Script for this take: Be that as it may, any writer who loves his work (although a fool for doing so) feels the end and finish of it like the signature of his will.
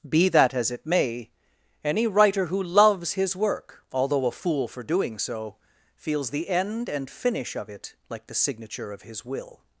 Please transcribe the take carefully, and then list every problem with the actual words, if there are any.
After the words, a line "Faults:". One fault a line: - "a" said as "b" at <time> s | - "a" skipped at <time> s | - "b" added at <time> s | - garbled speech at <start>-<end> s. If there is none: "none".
Be that as it may, any writer who loves his work (although a fool for doing so) feels the end and finish of it like the signature of his will.
Faults:
none